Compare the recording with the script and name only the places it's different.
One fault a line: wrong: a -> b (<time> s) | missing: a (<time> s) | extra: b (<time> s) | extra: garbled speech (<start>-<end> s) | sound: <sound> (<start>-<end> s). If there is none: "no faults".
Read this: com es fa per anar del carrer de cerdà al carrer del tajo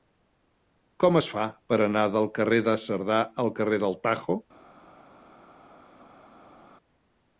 no faults